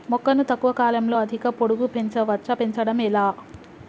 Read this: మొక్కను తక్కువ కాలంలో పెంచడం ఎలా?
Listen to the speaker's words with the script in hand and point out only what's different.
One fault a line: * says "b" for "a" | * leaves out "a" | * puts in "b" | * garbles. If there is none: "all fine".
* puts in "అధిక పొడుగు పెంచవచ్చా"